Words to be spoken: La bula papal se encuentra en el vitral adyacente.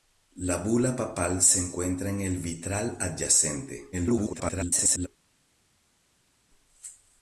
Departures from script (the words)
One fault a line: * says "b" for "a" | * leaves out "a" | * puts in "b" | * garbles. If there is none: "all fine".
* garbles